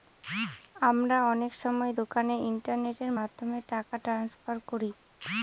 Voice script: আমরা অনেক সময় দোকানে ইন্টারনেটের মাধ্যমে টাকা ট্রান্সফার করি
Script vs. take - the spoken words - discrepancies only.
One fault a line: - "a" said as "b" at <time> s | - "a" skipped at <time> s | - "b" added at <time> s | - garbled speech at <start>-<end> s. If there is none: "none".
none